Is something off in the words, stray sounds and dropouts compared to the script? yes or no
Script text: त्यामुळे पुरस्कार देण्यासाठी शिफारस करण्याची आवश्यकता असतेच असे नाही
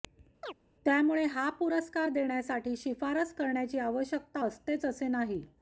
yes